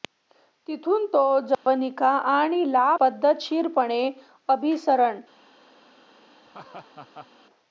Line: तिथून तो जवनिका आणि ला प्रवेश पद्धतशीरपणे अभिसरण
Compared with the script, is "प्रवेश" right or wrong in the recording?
wrong